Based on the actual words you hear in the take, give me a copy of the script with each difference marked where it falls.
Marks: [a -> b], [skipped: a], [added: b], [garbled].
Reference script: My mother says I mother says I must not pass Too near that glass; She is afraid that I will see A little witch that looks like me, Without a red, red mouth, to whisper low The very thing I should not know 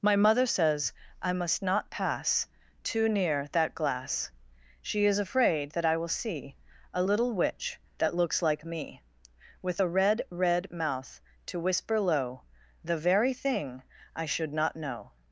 My mother says I [skipped: mother says I] must not pass Too near that glass; She is afraid that I will see A little witch that looks like me, [Without -> With] a red, red mouth, to whisper low The very thing I should not know